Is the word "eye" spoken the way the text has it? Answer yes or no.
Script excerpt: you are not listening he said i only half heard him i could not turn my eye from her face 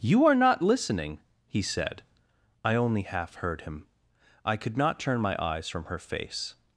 no